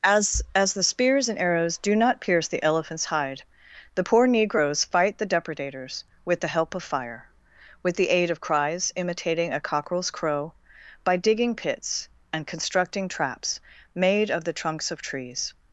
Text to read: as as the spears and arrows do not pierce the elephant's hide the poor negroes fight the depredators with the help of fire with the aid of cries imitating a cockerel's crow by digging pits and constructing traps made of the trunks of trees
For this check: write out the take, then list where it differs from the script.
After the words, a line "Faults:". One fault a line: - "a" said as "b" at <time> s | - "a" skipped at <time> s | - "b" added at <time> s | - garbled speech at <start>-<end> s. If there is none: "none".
as as the spears and arrows do not pierce the elephant's hide the poor negroes fight the depredators with the help of fire with the aid of cries imitating a cockerel's crow by digging pits and constructing traps made of the trunks of trees
Faults:
none